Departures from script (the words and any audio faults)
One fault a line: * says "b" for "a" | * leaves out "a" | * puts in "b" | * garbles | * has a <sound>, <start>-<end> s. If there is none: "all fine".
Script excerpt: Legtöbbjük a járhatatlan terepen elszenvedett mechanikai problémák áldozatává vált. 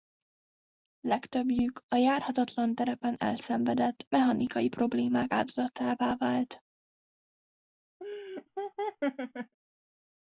* has a laugh, 8.0-9.5 s